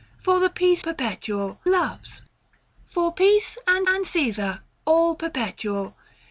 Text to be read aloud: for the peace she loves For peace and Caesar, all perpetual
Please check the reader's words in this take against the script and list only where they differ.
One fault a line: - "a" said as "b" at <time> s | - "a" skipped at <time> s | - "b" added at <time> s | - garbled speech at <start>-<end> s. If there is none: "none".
- "she" said as "perpetual" at 0.8 s
- "and" added at 3.9 s